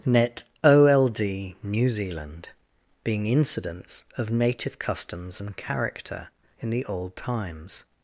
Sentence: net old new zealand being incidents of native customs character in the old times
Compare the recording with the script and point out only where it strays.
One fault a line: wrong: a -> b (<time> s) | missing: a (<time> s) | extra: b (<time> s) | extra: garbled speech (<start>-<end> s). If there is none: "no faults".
extra: and (5.4 s)